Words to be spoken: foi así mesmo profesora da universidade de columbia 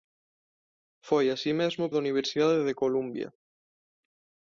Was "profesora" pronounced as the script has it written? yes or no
no